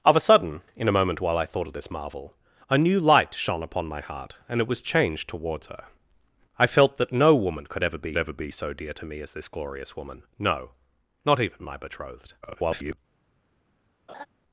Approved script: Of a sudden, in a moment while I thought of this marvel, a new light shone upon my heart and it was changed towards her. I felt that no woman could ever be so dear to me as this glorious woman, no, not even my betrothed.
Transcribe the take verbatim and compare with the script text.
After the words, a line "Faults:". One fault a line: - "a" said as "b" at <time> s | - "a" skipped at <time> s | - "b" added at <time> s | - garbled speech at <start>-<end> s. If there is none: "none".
Of a sudden, in a moment while I thought of this marvel, a new light shone upon my heart and it was changed towards her. I felt that no woman could ever be ever be so dear to me as this glorious woman, no, not even my betrothed. [garbled]
Faults:
- "ever be" added at 8.2 s
- garbled speech at 12.4-13.0 s